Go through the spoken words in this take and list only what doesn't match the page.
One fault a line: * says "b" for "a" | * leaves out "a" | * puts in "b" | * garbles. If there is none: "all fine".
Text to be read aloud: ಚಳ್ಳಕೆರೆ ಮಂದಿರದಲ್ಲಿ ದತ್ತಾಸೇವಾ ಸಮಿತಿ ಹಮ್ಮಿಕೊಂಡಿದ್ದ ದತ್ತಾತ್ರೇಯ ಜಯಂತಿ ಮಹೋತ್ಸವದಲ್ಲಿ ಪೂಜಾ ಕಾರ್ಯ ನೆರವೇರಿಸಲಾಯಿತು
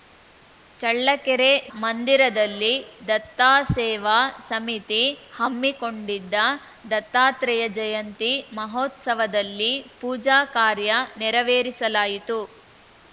all fine